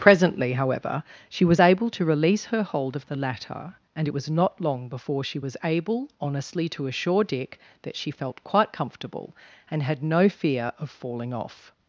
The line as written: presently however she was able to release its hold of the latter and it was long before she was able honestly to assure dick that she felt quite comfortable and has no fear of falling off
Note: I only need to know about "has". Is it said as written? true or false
false